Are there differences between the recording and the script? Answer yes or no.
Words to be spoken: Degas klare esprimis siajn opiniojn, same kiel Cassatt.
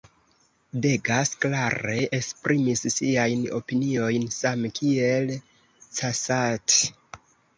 no